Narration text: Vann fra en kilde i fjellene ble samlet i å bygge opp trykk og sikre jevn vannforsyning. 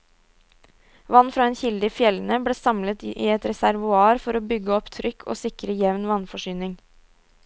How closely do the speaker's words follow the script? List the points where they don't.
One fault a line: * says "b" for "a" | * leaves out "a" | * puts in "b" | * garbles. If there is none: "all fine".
* puts in "et reservoar for"